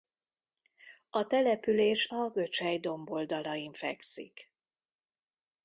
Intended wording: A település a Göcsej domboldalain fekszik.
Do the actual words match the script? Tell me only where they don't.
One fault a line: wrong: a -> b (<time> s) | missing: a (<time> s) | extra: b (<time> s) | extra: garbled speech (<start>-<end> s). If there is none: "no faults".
no faults